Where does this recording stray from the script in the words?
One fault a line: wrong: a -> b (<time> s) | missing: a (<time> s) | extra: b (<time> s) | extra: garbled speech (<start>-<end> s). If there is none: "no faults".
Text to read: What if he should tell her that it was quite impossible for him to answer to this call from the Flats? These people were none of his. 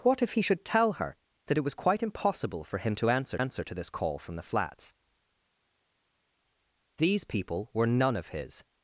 extra: answer (3.4 s)